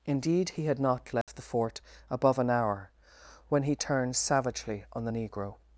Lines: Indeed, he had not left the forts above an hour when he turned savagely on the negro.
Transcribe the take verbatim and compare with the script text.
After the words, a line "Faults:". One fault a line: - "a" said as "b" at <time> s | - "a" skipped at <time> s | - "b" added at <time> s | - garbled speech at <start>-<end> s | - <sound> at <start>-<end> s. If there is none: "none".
Indeed, he had not left the fort above an hour when he turned savagely on the negro.
Faults:
- dropout at 1.2-1.3 s
- "forts" said as "fort" at 1.4 s